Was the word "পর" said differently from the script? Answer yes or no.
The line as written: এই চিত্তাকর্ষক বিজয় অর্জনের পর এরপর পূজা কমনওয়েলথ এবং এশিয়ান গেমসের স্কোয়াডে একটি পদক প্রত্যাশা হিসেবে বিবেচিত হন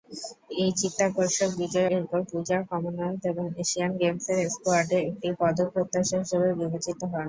yes